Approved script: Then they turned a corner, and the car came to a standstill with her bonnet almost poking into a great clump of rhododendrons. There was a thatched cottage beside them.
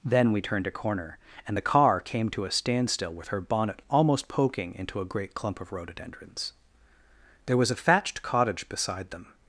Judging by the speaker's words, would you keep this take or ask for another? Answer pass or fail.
fail